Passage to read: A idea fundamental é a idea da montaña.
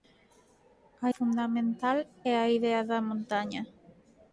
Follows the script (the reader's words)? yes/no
no